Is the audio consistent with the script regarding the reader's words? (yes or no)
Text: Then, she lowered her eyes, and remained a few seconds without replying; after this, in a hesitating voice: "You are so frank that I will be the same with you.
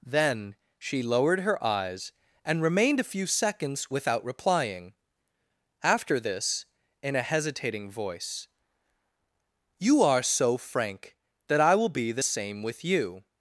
yes